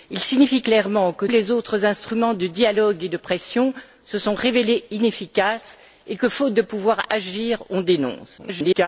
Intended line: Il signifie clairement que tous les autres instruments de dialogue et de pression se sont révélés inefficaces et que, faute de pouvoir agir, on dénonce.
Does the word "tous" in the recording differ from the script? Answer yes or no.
yes